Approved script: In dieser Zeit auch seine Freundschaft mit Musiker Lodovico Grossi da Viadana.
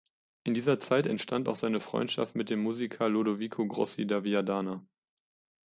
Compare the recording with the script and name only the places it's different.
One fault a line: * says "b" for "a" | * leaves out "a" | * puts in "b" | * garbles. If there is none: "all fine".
* puts in "entstand"
* puts in "dem"